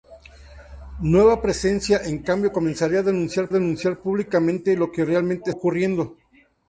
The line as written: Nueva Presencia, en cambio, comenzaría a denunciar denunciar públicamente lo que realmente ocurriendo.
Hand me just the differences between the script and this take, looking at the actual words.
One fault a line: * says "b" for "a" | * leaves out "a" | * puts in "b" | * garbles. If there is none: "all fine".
all fine